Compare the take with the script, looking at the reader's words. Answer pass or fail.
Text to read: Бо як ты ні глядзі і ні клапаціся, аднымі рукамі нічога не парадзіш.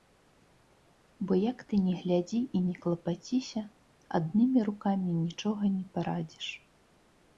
pass